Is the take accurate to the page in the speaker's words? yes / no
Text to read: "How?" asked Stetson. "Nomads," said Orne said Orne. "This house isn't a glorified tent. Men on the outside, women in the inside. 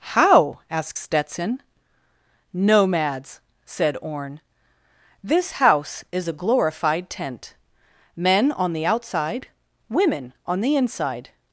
no